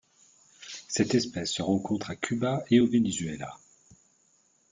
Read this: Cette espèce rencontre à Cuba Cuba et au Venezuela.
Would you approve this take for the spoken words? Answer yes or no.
no